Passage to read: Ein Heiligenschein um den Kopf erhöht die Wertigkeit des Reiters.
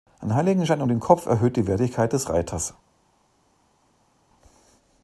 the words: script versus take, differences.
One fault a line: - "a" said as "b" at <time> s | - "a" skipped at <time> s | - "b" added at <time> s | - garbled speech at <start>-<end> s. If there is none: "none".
none